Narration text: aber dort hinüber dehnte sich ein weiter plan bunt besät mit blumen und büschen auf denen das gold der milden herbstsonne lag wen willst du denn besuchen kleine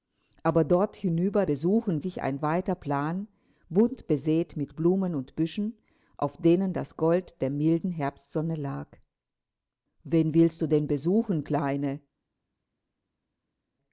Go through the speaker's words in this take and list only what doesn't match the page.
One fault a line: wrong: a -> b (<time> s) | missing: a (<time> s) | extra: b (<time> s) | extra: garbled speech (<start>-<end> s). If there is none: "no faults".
wrong: dehnte -> besuchen (1.5 s)